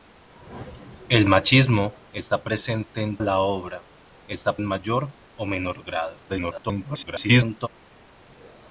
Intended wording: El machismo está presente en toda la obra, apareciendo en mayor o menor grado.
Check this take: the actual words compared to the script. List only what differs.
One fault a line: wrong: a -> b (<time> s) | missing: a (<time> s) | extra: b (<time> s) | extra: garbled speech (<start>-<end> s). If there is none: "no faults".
missing: toda (3.2 s)
wrong: apareciendo -> está (4.3 s)
extra: garbled speech (6.3-7.7 s)